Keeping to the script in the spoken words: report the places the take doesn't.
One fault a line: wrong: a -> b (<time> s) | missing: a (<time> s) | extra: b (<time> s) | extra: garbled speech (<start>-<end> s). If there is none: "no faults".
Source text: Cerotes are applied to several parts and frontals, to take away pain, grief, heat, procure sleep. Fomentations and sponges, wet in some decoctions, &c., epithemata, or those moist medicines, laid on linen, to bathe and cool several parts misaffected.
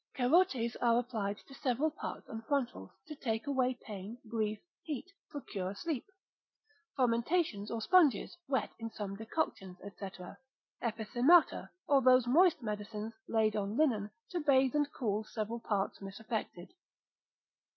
wrong: and -> or (7.7 s)